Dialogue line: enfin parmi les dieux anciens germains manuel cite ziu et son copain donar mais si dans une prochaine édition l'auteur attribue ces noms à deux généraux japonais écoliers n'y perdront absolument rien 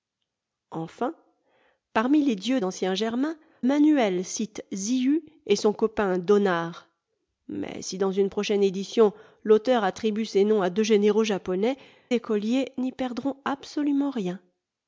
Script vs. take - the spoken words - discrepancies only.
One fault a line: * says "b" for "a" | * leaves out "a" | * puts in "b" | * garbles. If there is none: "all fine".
all fine